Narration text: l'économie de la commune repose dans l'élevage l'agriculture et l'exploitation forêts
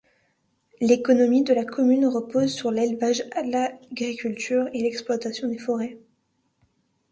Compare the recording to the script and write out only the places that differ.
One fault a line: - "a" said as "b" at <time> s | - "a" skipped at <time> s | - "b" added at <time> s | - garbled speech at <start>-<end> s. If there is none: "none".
- "dans" said as "sur" at 2.5 s
- "des" added at 5.5 s